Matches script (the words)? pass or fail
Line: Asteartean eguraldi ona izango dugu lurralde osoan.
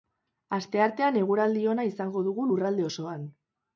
pass